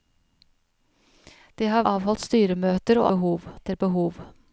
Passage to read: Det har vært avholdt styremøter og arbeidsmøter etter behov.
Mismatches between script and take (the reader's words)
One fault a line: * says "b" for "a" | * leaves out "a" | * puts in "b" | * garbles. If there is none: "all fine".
* leaves out "vært"
* says "behov" for "arbeidsmøter"